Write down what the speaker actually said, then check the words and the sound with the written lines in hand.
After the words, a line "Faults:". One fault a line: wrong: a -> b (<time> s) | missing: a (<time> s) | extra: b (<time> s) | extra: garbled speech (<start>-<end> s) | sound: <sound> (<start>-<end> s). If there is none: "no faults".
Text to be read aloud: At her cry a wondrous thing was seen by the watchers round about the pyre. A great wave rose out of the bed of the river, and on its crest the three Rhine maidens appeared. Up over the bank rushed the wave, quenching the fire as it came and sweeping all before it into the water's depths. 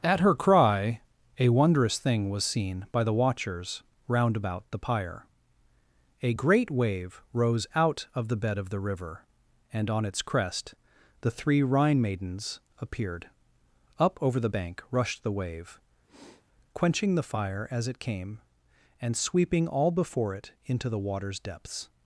At her cry a wondrous thing was seen by the watchers round about the pyre. A great wave rose out of the bed of the river, and on its crest the three Rhine maidens appeared. Up over the bank rushed the wave, quenching the fire as it came and sweeping all before it into the water's depths.
Faults:
sound: sniff (16.1-16.4 s)